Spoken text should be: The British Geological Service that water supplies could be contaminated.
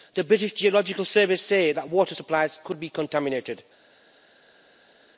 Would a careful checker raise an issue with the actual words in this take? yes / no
yes